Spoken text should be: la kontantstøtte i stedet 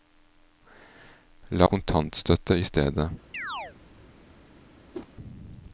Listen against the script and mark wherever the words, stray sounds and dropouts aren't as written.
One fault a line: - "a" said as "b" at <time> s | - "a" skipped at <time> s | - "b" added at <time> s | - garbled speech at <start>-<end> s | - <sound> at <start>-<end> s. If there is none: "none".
- chirp at 3.3-3.8 s
- whoosh at 4.9-5.1 s